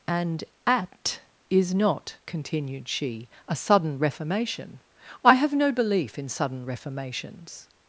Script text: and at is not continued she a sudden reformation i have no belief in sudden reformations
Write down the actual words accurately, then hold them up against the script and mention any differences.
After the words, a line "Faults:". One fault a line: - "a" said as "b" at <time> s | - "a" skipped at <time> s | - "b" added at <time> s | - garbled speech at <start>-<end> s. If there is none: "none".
and at is not continued she a sudden reformation i have no belief in sudden reformations
Faults:
none